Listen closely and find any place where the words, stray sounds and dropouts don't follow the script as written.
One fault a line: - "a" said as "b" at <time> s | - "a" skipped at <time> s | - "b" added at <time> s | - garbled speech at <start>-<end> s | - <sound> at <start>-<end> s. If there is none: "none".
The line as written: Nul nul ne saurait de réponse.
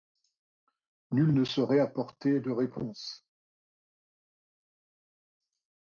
- "nul" skipped at 1.4 s
- "apporter" added at 1.8 s